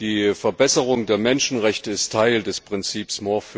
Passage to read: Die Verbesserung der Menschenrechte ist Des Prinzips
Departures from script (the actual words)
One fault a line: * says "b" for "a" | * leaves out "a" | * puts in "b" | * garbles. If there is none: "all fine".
* puts in "Teil"